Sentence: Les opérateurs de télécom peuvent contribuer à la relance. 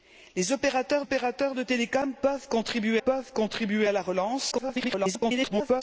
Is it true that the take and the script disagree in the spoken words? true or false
true